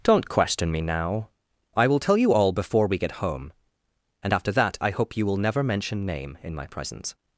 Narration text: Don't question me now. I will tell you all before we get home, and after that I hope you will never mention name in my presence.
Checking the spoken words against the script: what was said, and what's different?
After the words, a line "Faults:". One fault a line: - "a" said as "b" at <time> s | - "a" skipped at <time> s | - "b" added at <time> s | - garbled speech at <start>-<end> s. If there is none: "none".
Don't question me now. I will tell you all before we get home, and after that I hope you will never mention name in my presence.
Faults:
none